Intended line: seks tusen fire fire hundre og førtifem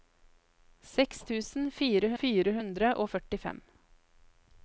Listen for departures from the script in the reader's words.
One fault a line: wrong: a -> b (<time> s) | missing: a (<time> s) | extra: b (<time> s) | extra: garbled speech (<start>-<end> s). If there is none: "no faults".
no faults